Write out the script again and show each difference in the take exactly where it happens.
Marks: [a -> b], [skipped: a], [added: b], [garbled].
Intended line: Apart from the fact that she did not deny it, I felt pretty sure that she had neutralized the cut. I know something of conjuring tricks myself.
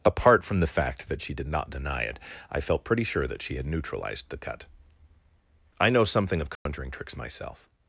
Apart from the fact that she did not deny it, I felt pretty sure that she had neutralized the cut. I know something of conjuring tricks myself.